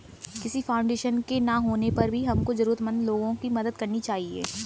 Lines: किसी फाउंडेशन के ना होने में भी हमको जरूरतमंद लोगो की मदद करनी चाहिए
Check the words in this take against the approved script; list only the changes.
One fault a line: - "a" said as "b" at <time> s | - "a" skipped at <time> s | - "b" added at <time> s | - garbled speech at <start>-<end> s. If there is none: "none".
- "में" said as "पर" at 2.0 s